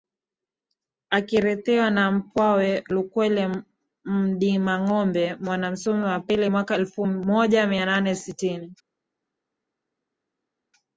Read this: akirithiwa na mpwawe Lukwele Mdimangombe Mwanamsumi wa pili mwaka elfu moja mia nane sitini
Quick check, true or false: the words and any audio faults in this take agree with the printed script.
true